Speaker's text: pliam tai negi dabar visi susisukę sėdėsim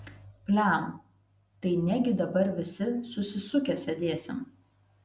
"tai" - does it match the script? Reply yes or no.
yes